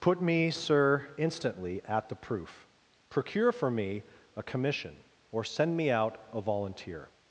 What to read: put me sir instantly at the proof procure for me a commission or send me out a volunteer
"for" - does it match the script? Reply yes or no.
yes